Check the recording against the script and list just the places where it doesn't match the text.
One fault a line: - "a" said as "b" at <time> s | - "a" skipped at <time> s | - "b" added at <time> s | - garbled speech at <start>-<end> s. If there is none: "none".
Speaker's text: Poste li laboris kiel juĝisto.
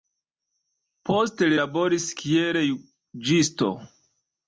none